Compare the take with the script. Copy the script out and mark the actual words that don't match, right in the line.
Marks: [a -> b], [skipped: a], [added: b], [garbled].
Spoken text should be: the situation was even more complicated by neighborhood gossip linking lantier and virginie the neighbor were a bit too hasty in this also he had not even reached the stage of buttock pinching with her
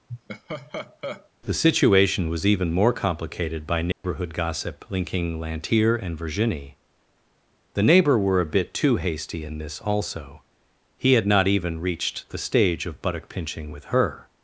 the situation was even more complicated by neighborhood gossip linking lantier and virginie the neighbor were a bit too hasty in this also he had not even reached the stage of buttock pinching with her